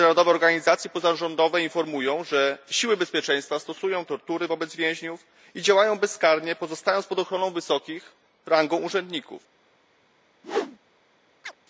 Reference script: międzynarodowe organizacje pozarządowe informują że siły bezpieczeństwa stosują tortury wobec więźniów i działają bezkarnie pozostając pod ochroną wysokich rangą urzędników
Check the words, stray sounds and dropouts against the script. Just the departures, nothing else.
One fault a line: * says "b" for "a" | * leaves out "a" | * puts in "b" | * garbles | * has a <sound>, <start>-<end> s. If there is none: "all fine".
* has a whoosh, 10.4-10.8 s
* has a chirp, 11.4-11.6 s